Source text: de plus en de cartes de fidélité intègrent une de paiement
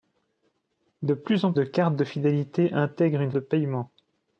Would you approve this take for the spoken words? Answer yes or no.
yes